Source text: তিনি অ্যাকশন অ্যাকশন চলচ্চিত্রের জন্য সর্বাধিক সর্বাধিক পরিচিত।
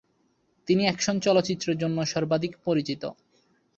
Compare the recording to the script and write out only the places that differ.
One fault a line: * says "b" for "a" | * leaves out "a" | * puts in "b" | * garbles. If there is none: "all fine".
* leaves out "অ্যাকশন"
* leaves out "সর্বাধিক"